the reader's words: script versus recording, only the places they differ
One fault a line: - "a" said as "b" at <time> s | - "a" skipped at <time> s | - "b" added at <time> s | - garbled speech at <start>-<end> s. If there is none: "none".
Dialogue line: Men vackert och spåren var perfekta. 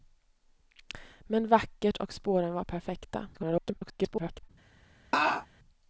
- garbled speech at 3.3-4.5 s